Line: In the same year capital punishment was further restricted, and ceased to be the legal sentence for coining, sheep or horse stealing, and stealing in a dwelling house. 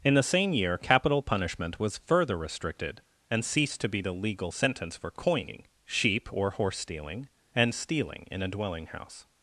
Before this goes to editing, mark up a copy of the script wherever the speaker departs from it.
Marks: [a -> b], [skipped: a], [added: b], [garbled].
In the same year capital punishment was further restricted, and ceased to be the legal sentence for coining, sheep or horse stealing, and stealing in a dwelling house.